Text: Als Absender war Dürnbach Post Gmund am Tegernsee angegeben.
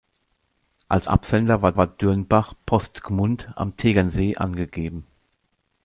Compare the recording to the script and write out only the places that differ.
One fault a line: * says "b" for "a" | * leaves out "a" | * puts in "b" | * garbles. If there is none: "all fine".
* puts in "war"